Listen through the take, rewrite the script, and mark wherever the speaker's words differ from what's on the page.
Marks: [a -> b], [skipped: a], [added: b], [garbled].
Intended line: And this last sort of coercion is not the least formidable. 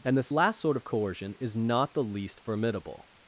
And this last sort of coercion is not the least formidable.